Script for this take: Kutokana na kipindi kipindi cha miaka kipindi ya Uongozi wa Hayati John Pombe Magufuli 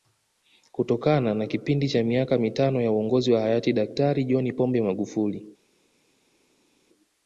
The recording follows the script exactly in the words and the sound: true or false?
false